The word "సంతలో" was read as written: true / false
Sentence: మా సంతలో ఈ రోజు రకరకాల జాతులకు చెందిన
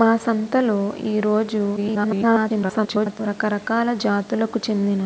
true